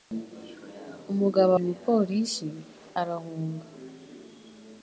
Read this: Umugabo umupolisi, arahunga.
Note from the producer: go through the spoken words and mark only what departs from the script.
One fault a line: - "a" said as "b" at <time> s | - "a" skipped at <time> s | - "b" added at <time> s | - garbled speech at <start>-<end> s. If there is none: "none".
none